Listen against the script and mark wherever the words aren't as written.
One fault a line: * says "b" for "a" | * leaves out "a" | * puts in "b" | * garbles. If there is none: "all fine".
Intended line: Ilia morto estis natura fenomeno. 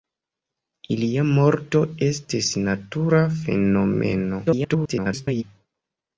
* garbles